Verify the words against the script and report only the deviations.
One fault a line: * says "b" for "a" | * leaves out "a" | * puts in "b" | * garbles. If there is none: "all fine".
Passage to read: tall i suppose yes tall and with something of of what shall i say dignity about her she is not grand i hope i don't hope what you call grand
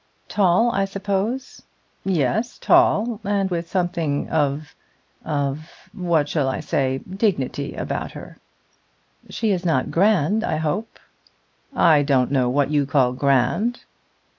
* says "know" for "hope"